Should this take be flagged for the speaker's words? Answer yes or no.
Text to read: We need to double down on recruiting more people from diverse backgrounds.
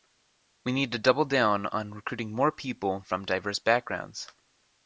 no